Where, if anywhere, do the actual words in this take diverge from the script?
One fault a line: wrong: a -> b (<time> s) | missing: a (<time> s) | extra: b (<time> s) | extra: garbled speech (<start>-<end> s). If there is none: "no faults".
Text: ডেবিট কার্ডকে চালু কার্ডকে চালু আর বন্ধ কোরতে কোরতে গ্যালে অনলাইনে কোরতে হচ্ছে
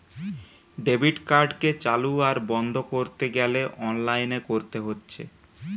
missing: কার্ডকে চালু (2.1 s)
missing: কোরতে (3.3 s)